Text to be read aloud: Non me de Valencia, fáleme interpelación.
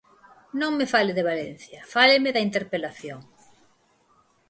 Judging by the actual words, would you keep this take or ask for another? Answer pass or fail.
fail